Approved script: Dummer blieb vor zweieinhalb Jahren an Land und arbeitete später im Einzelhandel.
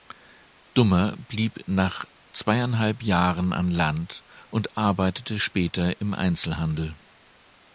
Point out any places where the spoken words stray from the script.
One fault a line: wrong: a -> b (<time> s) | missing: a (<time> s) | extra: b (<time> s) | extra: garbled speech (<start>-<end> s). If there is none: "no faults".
wrong: vor -> nach (1.7 s)